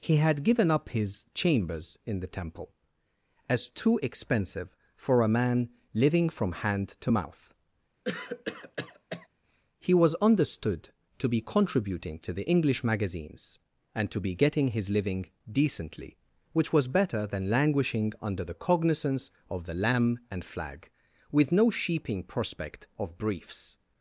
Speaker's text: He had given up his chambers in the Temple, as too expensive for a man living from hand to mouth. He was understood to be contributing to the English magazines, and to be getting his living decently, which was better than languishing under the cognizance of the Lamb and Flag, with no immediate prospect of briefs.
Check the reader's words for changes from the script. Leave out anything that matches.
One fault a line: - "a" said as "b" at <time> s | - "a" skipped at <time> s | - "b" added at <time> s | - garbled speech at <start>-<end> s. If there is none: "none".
- "immediate" said as "sheeping" at 21.7 s